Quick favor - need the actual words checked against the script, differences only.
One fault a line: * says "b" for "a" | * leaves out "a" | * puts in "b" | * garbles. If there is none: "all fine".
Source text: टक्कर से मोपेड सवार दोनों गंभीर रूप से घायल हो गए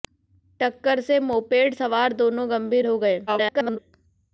* leaves out "रूप से घायल"
* garbles